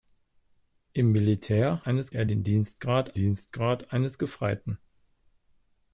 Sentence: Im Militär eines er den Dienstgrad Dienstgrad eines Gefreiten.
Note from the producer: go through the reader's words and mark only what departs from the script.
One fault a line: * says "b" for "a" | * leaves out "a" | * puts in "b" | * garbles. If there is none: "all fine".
all fine